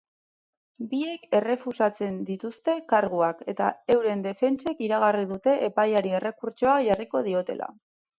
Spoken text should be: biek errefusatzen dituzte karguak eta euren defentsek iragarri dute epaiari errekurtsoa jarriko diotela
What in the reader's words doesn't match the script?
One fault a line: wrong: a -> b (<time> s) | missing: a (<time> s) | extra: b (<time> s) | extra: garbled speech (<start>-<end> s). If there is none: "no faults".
no faults